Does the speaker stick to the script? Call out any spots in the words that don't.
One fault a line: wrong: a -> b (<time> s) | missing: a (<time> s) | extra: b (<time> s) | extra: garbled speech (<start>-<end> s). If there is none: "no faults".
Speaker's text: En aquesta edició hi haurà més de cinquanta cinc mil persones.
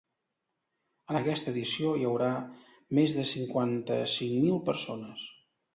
no faults